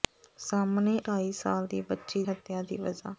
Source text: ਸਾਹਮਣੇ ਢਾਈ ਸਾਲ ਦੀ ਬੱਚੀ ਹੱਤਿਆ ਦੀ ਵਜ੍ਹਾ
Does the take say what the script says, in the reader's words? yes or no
yes